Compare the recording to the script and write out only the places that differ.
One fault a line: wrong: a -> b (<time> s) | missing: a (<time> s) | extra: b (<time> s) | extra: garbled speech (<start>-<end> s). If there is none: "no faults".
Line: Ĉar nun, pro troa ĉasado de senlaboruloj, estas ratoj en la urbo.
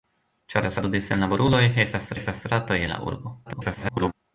missing: nun pro troa (0.7 s)
extra: estas (2.2 s)
extra: garbled speech (3.5-4.1 s)